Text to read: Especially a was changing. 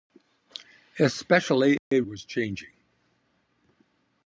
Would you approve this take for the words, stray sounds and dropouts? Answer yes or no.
no